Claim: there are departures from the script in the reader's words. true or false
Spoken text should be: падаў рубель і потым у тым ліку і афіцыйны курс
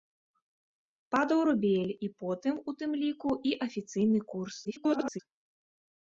true